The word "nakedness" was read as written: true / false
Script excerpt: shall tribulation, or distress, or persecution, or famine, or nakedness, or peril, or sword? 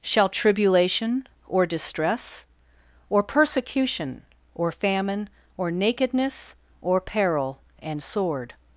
true